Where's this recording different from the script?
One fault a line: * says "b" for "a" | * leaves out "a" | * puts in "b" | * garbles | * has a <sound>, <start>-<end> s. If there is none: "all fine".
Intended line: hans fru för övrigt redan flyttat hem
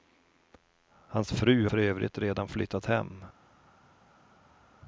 all fine